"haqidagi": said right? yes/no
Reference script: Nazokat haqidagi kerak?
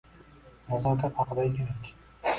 yes